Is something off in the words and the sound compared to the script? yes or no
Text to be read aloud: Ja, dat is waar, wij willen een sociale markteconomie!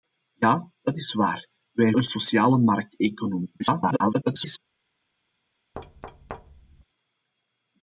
yes